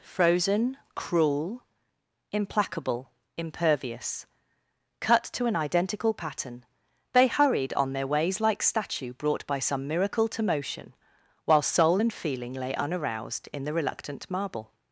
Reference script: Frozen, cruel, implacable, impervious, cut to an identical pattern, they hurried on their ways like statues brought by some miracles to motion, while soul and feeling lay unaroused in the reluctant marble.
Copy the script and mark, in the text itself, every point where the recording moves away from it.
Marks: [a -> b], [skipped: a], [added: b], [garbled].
Frozen, cruel, implacable, impervious, cut to an identical pattern, they hurried on their ways like [statues -> statue] brought by some [miracles -> miracle] to motion, while soul and feeling lay unaroused in the reluctant marble.